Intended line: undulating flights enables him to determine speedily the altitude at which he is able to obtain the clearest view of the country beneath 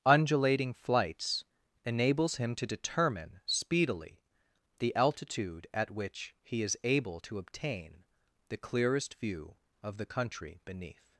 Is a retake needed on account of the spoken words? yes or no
no